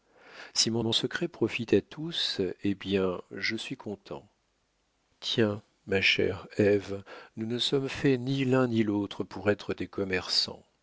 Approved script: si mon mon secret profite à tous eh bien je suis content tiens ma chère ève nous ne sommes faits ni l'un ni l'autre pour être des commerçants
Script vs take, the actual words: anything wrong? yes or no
no